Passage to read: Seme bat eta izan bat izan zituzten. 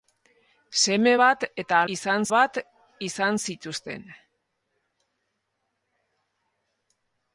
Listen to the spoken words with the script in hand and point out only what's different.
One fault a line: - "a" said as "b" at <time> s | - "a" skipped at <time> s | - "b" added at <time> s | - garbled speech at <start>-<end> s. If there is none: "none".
none